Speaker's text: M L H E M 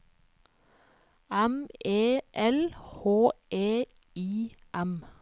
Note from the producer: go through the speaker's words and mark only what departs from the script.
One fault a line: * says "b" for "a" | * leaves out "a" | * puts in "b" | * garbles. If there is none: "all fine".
* puts in "E"
* puts in "I"